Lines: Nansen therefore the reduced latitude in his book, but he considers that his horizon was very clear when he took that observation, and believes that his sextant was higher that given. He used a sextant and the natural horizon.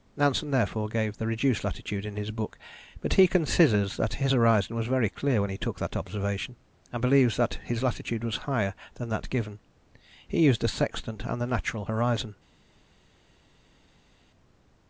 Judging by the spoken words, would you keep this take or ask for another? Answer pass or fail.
fail